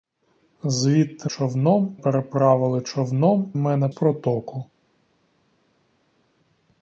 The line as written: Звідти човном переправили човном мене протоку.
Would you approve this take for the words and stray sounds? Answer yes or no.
yes